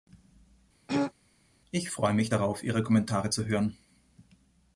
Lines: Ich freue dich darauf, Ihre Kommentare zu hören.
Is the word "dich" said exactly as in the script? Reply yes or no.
no